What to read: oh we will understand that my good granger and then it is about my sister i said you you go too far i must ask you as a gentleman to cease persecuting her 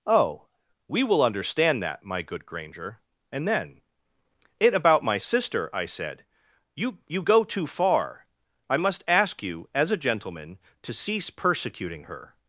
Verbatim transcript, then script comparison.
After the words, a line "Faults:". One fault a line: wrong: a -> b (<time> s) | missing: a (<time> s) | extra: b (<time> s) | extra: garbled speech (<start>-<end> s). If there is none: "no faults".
oh we will understand that my good granger and then it about my sister i said you you go too far i must ask you as a gentleman to cease persecuting her
Faults:
missing: is (4.7 s)